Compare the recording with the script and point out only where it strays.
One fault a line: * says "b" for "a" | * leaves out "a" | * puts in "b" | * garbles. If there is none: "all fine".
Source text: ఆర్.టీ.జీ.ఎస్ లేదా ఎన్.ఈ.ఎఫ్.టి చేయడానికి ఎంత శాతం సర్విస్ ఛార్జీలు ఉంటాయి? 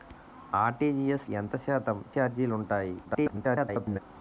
* leaves out "లేదా ఎన్.ఈ.ఎఫ్.టి చేయడానికి"
* leaves out "సర్విస్"
* garbles